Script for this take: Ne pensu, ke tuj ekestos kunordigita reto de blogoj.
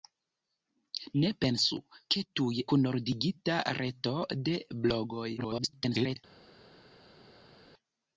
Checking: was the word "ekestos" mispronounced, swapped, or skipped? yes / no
yes